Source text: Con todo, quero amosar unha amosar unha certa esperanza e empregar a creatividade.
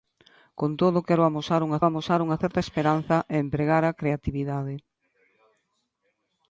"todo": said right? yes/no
yes